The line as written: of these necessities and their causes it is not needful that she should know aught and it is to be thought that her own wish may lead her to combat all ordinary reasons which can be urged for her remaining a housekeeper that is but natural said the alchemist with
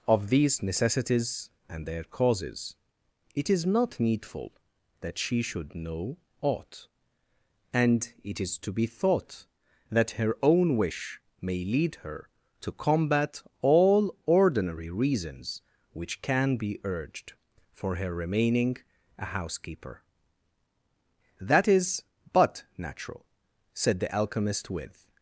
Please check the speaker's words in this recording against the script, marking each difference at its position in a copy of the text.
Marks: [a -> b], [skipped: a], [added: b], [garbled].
of these necessities and their causes it is not needful that she should know aught and it is to be thought that her own wish may lead her to combat all ordinary reasons which can be urged for her remaining a housekeeper that is but natural said the alchemist with